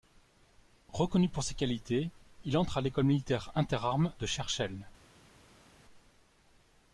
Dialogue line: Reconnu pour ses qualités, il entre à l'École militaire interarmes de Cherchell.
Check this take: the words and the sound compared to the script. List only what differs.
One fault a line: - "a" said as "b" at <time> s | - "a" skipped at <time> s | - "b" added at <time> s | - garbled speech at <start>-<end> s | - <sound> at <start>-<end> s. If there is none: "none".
none